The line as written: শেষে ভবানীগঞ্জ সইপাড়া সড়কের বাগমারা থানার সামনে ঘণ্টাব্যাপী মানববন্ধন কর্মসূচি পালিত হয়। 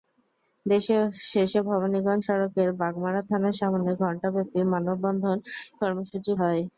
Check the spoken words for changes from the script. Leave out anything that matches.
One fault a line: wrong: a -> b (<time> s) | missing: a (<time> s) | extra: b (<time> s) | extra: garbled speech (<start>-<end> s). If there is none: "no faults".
missing: সইপাড়া (2.2 s)
missing: পালিত (6.3 s)